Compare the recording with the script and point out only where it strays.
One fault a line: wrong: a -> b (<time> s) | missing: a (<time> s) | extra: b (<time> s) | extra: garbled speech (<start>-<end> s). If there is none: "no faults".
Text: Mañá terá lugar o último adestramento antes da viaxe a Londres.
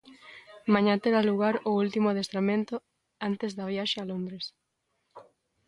no faults